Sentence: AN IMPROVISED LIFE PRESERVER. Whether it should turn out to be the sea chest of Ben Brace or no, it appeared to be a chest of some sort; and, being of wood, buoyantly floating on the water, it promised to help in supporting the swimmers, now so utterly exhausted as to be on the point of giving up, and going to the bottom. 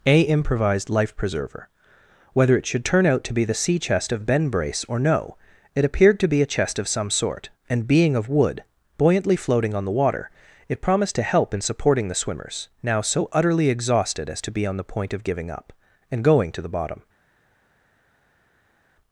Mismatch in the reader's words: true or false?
true